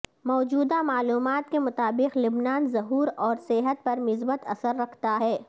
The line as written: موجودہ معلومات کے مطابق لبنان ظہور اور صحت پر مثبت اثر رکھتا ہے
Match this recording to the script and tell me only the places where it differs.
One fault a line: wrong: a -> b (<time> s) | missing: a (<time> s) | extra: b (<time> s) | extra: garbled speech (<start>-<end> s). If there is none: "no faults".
no faults